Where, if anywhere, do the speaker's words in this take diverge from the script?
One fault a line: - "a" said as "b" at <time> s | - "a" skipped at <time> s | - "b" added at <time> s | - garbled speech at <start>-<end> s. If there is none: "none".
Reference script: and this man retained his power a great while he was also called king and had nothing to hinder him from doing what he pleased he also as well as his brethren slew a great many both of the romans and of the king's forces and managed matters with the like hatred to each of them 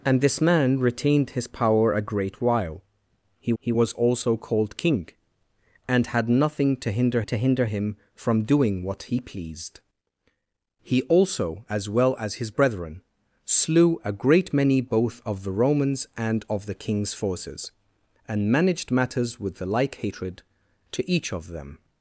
- "he" added at 3.6 s
- "to hinder" added at 7.2 s